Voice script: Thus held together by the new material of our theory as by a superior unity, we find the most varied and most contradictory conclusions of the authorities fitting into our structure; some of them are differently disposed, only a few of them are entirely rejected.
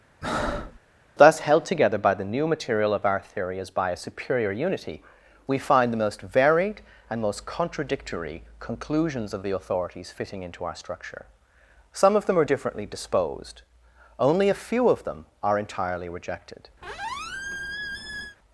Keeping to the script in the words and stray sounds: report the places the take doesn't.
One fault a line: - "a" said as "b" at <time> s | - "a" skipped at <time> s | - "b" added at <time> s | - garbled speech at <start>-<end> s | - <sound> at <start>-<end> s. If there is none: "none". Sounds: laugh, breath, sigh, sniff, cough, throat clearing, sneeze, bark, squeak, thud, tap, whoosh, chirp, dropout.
- breath at 0.2-0.8 s
- squeak at 16.8-18.4 s